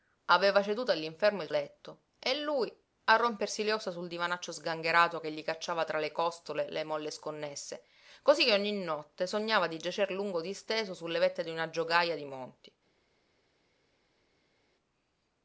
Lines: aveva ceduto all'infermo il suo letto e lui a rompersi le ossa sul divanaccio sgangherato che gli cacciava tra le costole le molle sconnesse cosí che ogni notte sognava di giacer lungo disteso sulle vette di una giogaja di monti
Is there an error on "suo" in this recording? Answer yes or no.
yes